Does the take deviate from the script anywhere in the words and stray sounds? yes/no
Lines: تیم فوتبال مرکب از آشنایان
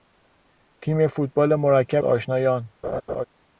yes